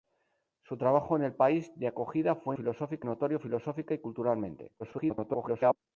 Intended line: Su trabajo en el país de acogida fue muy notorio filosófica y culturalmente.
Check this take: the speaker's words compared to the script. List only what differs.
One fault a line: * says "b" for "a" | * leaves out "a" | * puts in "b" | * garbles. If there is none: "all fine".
* says "filosófica" for "muy"
* garbles